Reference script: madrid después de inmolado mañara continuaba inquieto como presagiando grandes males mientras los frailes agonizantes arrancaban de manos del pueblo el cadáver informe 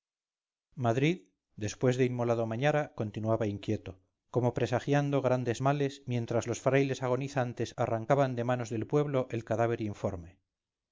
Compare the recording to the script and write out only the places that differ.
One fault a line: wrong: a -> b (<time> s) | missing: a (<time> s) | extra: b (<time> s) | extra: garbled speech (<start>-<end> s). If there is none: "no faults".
no faults